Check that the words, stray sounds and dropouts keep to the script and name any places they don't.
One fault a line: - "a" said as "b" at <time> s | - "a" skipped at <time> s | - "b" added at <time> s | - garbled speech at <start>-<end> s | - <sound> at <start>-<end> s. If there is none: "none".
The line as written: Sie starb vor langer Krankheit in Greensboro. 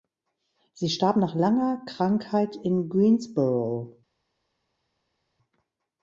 - "vor" said as "nach" at 1.2 s